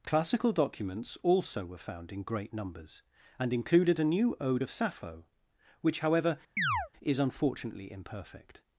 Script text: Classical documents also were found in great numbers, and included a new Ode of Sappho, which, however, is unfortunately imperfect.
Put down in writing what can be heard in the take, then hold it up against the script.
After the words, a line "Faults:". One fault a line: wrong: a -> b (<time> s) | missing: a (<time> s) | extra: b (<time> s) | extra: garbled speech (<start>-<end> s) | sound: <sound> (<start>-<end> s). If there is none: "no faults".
Classical documents also were found in great numbers, and included a new Ode of Sappho, which, however, is unfortunately imperfect.
Faults:
sound: chirp (6.6-6.9 s)